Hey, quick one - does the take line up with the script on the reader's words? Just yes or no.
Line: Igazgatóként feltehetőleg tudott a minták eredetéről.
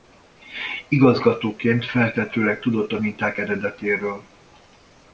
yes